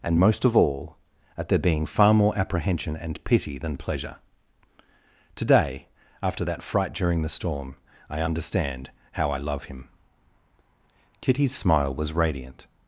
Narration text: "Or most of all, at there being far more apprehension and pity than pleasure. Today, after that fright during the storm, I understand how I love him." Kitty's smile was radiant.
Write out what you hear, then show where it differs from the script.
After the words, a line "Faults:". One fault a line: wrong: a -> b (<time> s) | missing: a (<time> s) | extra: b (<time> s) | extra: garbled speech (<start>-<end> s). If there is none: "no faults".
"And most of all, at there being far more apprehension and pity than pleasure. Today, after that fright during the storm, I understand how I love him." Kitty's smile was radiant.
Faults:
wrong: Or -> And (0.0 s)